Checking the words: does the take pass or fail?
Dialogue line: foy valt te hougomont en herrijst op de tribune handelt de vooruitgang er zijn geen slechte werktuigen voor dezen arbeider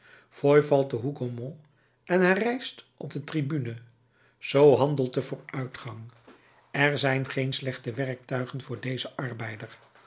fail